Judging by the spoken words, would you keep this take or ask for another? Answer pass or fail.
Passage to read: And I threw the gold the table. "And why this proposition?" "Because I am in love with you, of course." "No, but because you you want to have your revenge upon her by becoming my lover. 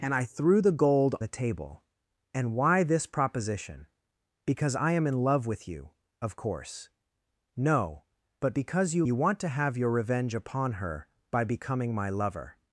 pass